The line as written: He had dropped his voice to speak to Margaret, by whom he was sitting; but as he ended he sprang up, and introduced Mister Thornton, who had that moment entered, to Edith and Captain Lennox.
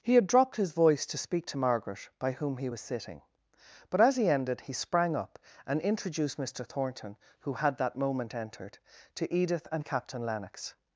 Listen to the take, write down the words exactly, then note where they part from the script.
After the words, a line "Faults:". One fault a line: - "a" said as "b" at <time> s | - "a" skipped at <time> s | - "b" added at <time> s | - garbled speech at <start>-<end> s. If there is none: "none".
He had dropped his voice to speak to Margaret, by whom he was sitting; but as he ended he sprang up, and introduced Mister Thornton, who had that moment entered, to Edith and Captain Lennox.
Faults:
none